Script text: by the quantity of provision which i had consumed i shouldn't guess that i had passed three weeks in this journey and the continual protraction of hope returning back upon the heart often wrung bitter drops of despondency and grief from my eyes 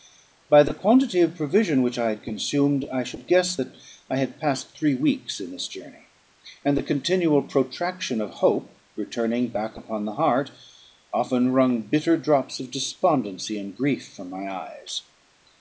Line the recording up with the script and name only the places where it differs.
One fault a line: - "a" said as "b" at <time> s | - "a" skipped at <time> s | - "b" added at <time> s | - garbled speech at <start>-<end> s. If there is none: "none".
- "shouldn't" said as "should" at 3.0 s